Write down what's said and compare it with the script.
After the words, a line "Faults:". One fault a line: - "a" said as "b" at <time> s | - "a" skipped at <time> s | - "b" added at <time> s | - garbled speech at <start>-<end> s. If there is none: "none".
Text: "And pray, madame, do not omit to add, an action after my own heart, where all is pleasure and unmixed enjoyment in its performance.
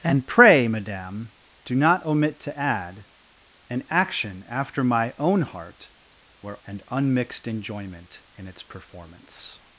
"And pray, madame, do not omit to add, an action after my own heart, where and unmixed enjoyment in its performance.
Faults:
- "all is pleasure" skipped at 6.6 s